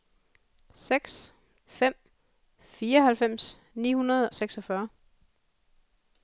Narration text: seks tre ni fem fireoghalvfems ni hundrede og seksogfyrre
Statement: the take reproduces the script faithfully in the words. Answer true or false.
false